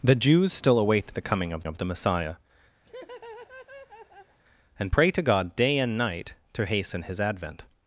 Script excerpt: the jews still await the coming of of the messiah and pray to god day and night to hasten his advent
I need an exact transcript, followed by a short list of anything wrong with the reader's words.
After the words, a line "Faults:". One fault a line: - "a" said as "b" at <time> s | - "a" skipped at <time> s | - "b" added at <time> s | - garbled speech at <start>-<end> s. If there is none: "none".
the jews still await the coming of of the messiah and pray to god day and night to hasten his advent
Faults:
none